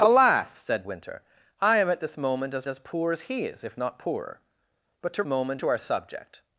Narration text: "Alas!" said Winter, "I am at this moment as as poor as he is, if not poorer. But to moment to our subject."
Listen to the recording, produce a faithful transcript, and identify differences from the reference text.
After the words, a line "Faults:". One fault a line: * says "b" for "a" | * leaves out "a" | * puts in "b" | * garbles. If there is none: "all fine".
"Alas!" said Winter, "I am at this moment as as poor as he is, if not poorer. But to moment to our subject."
Faults:
all fine